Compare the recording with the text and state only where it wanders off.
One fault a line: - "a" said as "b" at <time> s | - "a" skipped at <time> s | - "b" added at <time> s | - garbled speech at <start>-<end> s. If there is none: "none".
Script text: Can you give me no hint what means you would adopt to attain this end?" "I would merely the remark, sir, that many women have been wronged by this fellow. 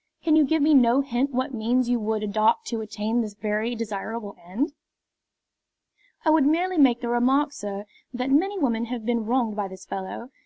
- "very desirable" added at 3.3 s
- "make" added at 6.8 s